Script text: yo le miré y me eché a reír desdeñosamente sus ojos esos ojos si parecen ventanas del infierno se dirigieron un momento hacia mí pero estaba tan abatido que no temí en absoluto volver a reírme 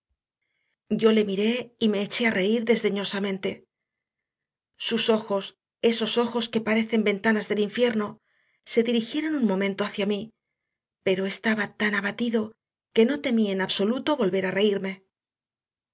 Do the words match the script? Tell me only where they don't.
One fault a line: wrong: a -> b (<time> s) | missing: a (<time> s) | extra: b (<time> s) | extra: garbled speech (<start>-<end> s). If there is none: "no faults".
wrong: si -> que (6.5 s)